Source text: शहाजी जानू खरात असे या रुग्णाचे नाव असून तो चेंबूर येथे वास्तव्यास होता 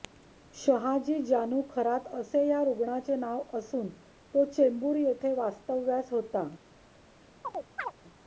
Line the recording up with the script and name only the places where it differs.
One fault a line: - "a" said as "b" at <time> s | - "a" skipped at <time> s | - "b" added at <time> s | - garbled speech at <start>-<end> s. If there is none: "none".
none